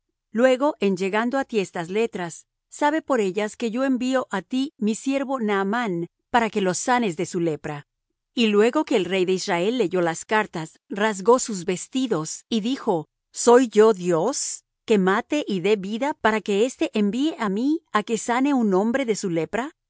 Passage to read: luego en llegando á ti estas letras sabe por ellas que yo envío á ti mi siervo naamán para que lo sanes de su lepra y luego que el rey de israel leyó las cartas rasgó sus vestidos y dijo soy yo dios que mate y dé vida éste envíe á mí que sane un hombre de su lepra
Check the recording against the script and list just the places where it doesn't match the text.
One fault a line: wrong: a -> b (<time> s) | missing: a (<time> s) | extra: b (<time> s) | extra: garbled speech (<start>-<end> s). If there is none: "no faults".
extra: para que (16.2 s)
extra: á (17.9 s)